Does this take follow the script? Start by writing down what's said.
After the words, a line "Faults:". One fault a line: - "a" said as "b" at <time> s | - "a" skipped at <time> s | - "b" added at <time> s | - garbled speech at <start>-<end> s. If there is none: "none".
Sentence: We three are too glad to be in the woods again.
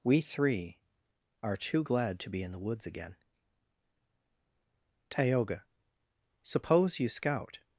We three are too glad to be in the woods again. Tayoga, suppose you scout
Faults:
- "Tayoga suppose you scout" added at 5.1 s